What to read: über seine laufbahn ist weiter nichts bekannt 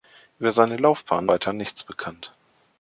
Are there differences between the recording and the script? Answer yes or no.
yes